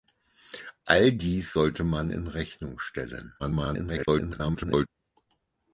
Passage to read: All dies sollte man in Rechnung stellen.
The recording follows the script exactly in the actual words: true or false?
false